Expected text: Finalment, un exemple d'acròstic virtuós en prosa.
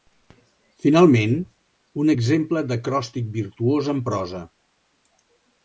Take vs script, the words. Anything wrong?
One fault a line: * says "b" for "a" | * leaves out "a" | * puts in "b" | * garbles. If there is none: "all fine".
all fine